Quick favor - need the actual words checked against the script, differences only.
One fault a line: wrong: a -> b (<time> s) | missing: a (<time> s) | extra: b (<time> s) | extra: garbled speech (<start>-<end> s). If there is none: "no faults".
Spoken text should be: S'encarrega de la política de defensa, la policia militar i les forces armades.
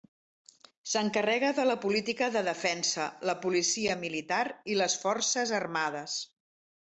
no faults